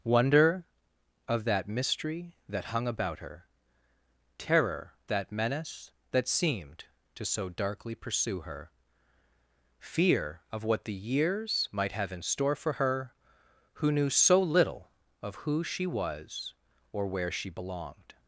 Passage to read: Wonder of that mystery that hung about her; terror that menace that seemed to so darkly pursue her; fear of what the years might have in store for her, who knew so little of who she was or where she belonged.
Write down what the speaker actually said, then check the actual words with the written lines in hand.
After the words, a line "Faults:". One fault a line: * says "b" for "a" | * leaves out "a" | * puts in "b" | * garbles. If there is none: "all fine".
Wonder of that mystery that hung about her; terror that menace that seemed to so darkly pursue her; fear of what the years might have in store for her, who knew so little of who she was or where she belonged.
Faults:
all fine